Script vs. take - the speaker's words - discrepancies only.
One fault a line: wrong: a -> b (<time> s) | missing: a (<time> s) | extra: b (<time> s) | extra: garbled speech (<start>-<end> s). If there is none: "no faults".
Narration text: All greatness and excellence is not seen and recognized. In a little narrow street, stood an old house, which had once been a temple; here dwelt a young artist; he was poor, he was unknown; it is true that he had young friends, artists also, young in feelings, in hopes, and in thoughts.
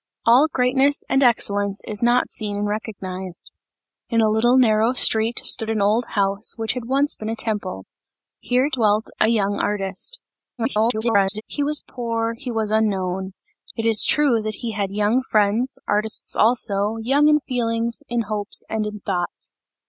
extra: garbled speech (10.6-11.4 s)